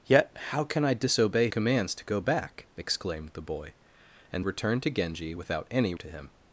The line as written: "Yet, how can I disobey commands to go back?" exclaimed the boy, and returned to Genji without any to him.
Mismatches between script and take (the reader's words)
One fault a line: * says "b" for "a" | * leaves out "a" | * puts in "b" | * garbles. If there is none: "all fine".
all fine